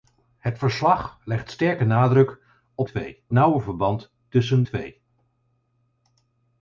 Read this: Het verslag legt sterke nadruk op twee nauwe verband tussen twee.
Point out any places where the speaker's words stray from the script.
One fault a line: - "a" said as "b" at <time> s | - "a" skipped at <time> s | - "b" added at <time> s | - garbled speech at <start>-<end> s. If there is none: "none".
none